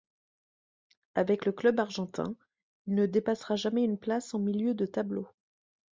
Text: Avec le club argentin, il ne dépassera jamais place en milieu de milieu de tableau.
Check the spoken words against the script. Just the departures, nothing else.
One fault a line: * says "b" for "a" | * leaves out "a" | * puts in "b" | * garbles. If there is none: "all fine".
* puts in "une"
* leaves out "milieu de"